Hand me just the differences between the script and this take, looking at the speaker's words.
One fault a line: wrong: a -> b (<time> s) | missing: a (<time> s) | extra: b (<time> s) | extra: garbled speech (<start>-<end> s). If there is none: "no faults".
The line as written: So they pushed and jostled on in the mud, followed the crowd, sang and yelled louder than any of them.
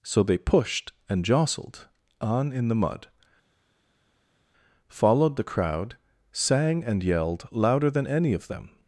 no faults